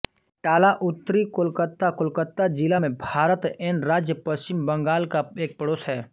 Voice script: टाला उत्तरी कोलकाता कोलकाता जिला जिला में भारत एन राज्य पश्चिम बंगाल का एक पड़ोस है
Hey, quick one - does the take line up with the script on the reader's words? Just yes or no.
no